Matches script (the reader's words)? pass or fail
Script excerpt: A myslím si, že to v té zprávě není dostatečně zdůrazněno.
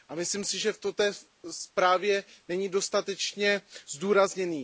pass